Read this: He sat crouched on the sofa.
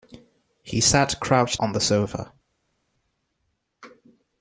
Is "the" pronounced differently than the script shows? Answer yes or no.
no